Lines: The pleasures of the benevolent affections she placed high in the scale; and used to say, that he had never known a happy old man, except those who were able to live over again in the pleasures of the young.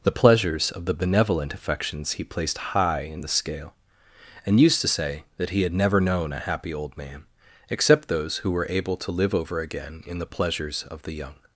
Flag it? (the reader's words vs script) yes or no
yes